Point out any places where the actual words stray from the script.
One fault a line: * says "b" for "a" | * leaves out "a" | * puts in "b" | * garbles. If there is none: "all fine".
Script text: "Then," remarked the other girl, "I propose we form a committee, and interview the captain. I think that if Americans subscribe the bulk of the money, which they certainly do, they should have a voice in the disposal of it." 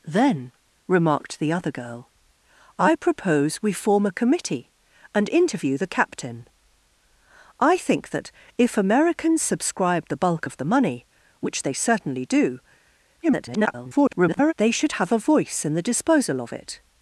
* garbles